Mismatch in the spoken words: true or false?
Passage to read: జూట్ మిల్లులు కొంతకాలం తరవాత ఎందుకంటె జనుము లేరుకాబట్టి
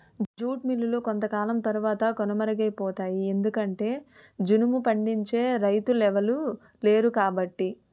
true